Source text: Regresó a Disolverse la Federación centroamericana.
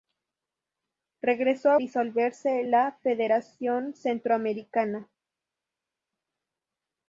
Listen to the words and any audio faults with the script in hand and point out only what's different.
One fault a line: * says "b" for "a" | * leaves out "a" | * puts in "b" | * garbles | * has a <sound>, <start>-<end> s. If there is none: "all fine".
all fine